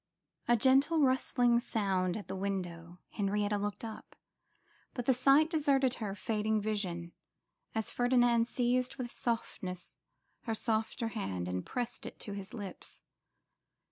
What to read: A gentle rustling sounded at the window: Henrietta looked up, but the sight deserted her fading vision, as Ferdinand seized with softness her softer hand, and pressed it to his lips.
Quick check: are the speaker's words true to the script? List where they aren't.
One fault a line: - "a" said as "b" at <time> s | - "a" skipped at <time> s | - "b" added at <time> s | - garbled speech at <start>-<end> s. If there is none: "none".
none